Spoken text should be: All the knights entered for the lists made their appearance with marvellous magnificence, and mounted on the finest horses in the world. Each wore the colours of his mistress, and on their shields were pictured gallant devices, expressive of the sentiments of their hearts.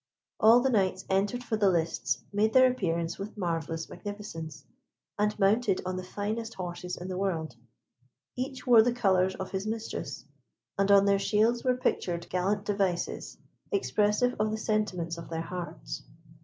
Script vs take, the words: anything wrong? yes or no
no